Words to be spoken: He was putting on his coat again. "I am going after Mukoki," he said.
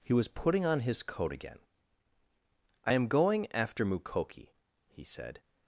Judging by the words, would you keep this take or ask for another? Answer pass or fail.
pass